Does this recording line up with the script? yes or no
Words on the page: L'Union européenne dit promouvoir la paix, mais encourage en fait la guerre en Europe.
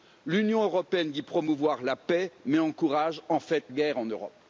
no